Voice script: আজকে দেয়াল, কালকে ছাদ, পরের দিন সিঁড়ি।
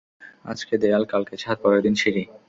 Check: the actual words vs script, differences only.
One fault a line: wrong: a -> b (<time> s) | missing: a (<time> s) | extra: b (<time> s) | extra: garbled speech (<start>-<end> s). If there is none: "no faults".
no faults